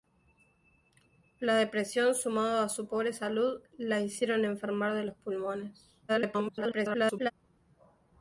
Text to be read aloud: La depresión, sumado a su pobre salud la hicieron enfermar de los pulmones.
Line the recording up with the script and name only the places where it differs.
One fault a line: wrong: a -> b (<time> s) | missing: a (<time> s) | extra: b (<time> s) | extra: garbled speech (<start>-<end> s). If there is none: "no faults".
extra: garbled speech (6.1-7.3 s)